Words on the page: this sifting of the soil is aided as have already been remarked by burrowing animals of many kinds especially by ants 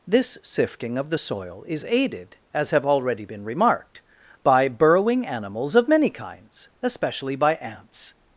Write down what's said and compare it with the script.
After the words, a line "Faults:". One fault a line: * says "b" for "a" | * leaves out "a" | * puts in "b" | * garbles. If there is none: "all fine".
this sifting of the soil is aided as have already been remarked by burrowing animals of many kinds especially by ants
Faults:
all fine